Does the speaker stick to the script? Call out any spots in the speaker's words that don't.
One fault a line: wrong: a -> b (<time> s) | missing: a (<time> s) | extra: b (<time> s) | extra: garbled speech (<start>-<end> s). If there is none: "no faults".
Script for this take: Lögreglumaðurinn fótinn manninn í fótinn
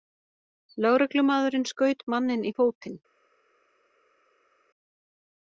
wrong: fótinn -> skaut (1.7 s)